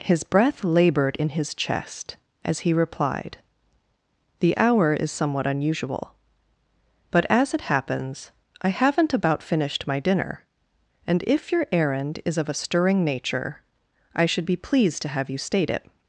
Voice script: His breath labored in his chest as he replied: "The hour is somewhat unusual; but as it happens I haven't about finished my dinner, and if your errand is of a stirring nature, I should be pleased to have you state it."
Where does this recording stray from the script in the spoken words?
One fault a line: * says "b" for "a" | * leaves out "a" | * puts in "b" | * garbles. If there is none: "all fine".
all fine